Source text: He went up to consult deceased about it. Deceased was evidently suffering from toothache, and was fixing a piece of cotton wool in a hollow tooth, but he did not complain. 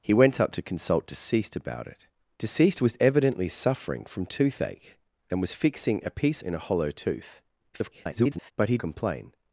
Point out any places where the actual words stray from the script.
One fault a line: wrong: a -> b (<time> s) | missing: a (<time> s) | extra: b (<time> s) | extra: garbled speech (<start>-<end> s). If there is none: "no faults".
missing: of cotton wool (6.4 s)
extra: garbled speech (7.7-8.5 s)
missing: did not (8.8 s)